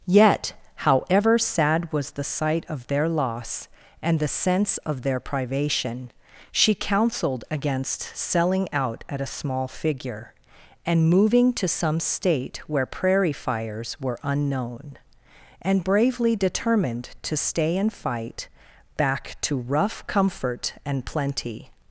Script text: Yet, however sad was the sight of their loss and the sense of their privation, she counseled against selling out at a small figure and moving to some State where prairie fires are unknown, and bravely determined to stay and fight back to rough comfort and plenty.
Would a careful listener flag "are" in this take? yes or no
yes